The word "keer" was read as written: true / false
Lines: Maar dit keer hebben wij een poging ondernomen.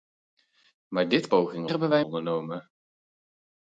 false